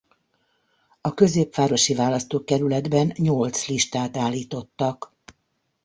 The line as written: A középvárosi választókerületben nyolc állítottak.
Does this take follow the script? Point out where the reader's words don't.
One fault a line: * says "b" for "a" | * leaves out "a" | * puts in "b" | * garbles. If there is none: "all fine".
* puts in "listát"